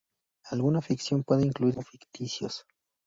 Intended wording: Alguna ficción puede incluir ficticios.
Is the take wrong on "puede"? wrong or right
right